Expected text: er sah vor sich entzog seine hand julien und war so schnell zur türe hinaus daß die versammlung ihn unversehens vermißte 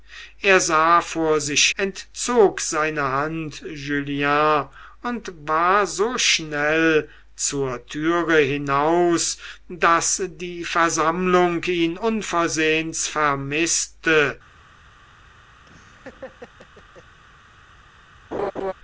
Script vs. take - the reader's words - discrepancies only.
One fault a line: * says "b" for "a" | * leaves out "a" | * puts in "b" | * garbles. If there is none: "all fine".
all fine